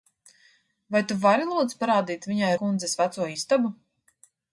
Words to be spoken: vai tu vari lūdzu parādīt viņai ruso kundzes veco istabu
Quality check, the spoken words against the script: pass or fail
fail